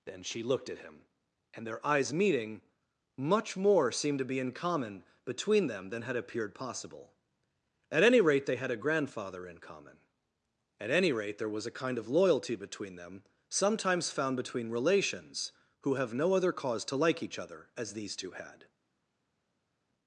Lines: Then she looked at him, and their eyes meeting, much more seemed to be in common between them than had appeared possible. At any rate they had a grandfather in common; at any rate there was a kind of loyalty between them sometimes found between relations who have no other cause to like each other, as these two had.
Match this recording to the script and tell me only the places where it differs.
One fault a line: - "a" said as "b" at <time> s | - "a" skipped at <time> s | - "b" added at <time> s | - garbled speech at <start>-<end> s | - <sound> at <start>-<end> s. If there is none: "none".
none